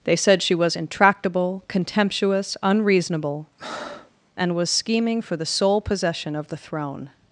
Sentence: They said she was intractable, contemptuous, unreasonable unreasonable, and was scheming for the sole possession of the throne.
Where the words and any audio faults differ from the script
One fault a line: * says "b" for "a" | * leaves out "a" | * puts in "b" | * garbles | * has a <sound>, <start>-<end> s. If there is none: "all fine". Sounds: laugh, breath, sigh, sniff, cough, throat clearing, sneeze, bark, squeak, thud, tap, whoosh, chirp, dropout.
* leaves out "unreasonable"
* has a breath, 3.6-4.2 s